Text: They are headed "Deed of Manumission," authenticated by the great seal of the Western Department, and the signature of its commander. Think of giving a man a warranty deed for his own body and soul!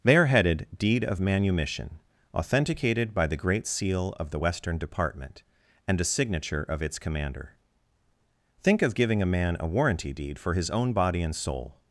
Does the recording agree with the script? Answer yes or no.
no